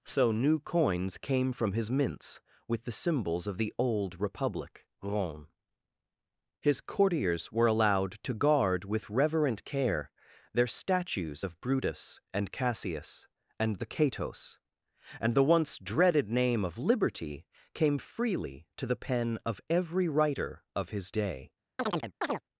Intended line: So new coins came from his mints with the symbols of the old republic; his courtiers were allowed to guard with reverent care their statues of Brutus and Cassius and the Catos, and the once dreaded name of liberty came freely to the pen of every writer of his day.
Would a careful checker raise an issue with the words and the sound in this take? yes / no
yes